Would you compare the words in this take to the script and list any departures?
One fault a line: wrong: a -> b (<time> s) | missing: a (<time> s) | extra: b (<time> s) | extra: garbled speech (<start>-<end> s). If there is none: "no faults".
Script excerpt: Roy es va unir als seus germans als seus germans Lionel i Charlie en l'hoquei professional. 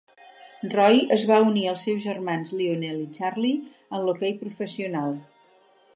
missing: als seus germans (2.5 s)